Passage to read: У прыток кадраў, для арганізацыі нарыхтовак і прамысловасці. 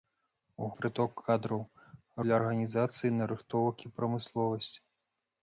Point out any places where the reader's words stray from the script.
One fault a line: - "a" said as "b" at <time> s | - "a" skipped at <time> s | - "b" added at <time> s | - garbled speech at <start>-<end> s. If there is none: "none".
none